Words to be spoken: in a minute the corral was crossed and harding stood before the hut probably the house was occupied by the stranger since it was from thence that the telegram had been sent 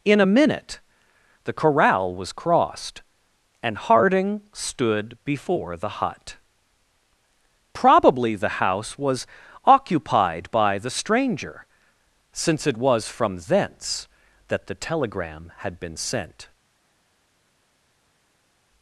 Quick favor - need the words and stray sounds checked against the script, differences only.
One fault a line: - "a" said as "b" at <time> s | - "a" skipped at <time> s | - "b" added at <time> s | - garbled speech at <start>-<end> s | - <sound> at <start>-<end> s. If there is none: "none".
none